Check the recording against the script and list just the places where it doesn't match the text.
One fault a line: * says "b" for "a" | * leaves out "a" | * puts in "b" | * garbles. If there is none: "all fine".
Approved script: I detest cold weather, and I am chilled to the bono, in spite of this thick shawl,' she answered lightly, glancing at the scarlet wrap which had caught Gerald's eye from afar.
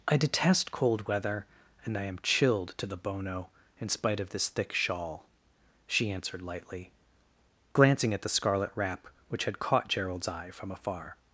all fine